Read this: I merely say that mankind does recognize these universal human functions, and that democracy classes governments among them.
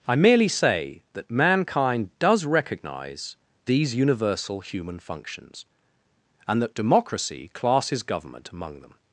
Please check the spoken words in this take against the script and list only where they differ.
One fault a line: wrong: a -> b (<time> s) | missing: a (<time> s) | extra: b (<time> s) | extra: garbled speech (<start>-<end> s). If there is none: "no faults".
wrong: governments -> government (8.0 s)